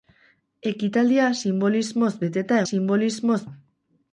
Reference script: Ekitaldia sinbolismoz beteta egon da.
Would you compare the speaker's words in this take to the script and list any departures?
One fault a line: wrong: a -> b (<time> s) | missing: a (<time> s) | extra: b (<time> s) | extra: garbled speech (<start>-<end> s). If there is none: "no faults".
wrong: egon -> sinbolismoz (2.7 s)